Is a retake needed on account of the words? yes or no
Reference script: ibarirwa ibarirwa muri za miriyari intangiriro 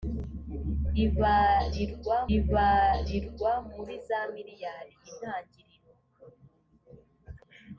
no